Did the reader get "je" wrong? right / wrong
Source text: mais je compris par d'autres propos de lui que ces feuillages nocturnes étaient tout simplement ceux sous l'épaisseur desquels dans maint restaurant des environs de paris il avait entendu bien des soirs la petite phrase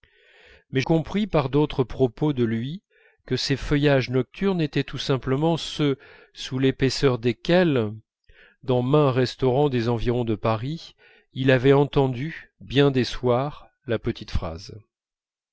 wrong